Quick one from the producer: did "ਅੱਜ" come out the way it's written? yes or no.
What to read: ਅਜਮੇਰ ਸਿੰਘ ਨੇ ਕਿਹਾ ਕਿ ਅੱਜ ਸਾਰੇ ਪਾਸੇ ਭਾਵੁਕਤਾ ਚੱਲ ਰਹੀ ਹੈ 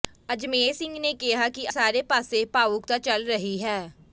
no